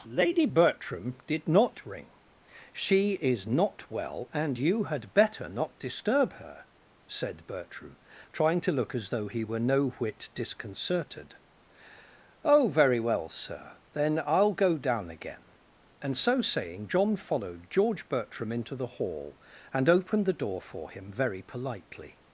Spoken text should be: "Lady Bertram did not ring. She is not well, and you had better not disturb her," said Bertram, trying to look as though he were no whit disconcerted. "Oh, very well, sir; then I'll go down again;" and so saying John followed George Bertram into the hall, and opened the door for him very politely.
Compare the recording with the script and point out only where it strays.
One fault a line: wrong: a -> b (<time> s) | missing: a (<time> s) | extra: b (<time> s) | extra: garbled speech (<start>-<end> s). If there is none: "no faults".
no faults